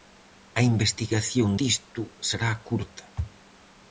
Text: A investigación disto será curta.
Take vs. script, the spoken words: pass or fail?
pass